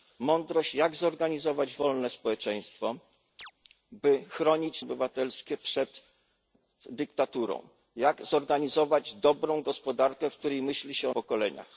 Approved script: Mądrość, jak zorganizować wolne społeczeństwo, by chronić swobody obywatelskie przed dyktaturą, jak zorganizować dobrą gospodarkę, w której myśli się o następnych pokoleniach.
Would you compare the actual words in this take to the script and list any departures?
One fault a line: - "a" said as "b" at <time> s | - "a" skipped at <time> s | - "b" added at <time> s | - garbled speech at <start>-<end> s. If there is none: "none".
- "swobody" skipped at 4.8 s
- "następnych" skipped at 11.1 s